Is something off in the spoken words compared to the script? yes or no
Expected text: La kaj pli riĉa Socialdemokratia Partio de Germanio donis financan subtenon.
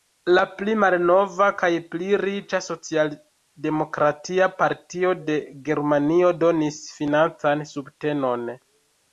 yes